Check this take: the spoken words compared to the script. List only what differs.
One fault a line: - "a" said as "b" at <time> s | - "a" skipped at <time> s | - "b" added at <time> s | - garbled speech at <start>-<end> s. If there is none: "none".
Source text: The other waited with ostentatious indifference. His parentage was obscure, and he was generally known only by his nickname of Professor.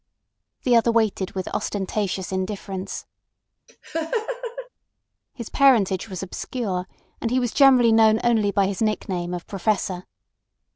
none